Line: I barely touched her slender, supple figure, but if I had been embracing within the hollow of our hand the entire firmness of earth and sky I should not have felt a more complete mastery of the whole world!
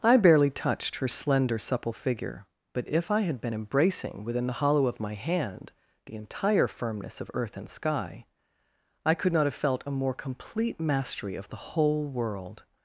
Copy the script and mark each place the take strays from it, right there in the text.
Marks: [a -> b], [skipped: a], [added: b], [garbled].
I barely touched her slender, supple figure, but if I had been embracing within the hollow of [our -> my] hand the entire firmness of earth and sky I [should -> could] not have felt a more complete mastery of the whole world!